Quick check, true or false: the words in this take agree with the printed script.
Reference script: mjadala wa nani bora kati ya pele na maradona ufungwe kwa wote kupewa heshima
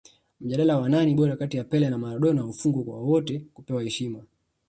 true